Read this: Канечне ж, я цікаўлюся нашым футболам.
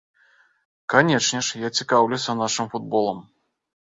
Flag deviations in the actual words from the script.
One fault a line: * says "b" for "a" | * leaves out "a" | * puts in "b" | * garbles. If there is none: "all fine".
all fine